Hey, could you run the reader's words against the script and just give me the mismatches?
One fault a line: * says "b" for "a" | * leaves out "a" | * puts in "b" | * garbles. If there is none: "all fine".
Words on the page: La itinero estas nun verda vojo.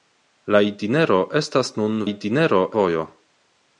* says "itinero" for "verda"